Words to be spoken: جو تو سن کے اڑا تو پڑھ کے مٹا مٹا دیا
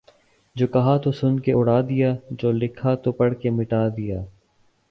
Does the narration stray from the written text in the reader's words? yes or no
yes